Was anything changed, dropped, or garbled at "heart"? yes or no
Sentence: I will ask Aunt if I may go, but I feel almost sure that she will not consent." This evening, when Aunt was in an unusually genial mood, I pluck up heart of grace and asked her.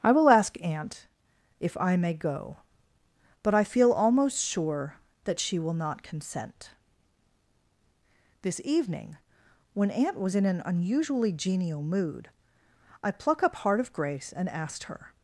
no